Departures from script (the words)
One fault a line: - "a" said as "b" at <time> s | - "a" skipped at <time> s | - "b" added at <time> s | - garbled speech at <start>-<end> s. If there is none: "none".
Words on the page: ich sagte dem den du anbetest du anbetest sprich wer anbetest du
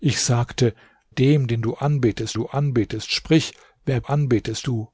none